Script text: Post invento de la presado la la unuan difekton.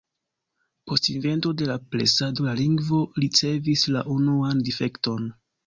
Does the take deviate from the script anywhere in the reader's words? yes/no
yes